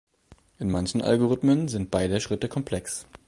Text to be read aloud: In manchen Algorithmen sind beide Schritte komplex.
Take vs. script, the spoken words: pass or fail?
pass